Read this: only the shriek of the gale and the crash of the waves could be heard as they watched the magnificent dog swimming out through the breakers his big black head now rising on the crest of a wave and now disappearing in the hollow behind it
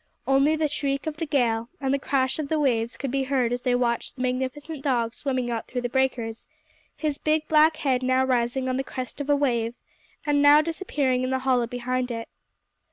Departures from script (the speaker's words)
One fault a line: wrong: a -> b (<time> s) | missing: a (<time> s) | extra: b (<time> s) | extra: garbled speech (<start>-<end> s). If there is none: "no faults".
no faults